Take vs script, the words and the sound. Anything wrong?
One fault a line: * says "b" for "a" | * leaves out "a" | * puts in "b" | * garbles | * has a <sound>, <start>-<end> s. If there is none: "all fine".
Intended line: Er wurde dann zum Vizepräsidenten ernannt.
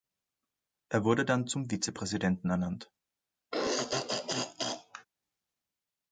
* has a throat clearing, 3.5-5.1 s